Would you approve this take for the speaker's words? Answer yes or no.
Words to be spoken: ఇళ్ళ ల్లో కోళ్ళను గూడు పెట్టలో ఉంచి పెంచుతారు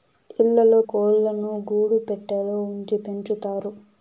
yes